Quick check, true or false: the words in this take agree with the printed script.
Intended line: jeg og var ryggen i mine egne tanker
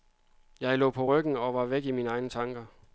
false